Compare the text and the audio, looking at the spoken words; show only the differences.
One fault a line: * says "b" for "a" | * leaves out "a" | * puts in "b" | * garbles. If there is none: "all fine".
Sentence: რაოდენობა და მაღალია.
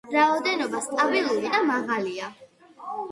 * puts in "სტაბილური"